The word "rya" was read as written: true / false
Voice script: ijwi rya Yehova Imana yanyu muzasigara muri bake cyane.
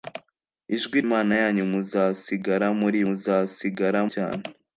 false